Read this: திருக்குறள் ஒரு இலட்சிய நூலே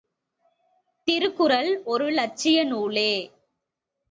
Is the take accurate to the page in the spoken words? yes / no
yes